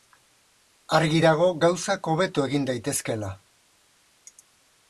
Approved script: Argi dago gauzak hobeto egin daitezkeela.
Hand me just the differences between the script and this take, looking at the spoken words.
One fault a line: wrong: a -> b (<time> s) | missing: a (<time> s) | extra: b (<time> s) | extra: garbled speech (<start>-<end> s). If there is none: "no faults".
no faults